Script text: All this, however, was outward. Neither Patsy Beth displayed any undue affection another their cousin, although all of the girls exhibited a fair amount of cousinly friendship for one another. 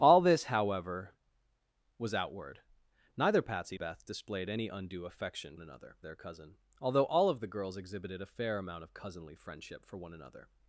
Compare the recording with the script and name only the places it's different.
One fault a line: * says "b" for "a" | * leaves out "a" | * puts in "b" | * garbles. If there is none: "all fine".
all fine